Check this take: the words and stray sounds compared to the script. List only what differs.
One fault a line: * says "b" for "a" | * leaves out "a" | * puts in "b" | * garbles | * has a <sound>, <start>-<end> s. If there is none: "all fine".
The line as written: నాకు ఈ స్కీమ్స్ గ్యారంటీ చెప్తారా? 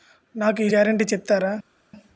* leaves out "స్కీమ్స్"